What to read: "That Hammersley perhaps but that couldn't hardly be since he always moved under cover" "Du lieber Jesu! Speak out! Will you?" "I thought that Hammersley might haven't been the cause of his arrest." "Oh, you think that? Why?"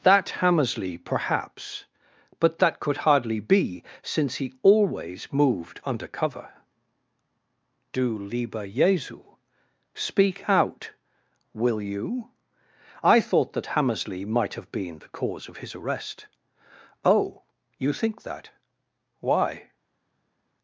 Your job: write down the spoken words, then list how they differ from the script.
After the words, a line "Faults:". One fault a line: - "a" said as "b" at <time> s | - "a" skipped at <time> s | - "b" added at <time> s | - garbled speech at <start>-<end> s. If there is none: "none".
"That Hammersley perhaps but that could hardly be since he always moved under cover" "Du lieber Jesu! Speak out! Will you?" "I thought that Hammersley might have been the cause of his arrest." "Oh, you think that? Why?"
Faults:
- "couldn't" said as "could" at 2.8 s
- "haven't" said as "have" at 14.6 s